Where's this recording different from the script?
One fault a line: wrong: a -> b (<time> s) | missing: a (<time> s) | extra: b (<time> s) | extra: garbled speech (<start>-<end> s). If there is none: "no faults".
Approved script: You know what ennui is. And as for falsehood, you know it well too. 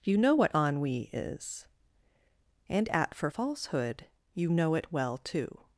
wrong: as -> at (2.9 s)